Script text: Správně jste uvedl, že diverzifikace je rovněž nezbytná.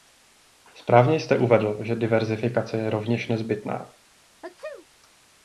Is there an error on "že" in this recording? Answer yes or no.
no